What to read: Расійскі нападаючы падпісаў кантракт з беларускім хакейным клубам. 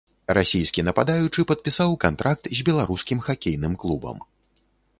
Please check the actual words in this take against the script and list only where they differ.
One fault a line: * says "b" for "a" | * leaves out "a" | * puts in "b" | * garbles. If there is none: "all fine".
all fine